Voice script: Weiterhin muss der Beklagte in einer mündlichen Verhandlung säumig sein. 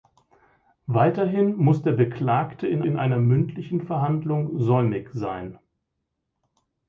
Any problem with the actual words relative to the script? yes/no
yes